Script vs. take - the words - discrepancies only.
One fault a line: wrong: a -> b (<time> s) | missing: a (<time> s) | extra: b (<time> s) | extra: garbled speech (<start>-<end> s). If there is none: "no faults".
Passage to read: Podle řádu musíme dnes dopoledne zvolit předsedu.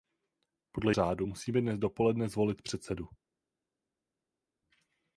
no faults